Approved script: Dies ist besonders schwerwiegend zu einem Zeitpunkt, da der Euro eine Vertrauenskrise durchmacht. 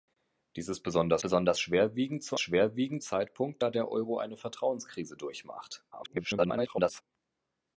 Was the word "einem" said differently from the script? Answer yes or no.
yes